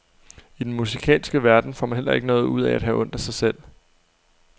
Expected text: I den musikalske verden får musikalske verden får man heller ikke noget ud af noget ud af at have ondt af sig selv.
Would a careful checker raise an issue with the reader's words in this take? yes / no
yes